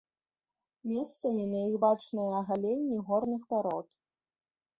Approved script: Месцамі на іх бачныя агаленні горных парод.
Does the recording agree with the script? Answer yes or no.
yes